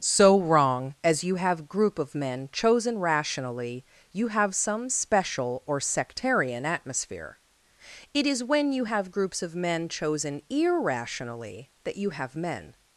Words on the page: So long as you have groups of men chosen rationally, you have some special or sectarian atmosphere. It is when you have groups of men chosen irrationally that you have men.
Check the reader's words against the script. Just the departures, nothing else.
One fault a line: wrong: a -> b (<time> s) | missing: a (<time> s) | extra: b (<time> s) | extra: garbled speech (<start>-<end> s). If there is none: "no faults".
wrong: long -> wrong (0.4 s)
wrong: groups -> group (1.7 s)